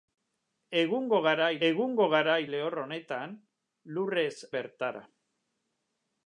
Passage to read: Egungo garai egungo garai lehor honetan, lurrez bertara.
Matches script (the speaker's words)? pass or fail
pass